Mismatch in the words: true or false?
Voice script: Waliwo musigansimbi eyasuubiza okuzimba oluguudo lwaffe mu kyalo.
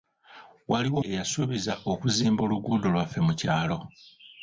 true